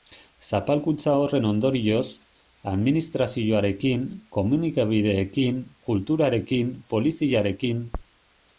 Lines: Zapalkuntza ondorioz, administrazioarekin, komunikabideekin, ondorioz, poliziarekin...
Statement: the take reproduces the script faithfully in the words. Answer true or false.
false